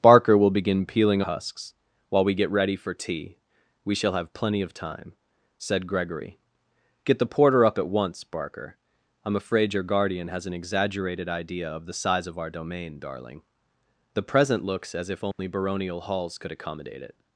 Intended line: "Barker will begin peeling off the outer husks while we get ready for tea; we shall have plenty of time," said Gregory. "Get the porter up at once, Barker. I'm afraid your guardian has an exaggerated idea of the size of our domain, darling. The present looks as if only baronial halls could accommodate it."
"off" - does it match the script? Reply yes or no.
no